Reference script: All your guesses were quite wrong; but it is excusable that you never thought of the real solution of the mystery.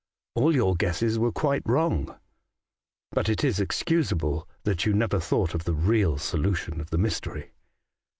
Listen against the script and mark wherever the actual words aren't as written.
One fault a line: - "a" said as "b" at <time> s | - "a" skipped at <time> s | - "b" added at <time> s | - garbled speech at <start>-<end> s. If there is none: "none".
none